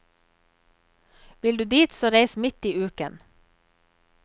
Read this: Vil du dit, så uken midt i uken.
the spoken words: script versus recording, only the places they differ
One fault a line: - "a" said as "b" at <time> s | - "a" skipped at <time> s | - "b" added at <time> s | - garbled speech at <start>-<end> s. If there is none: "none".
- "uken" said as "reis" at 2.1 s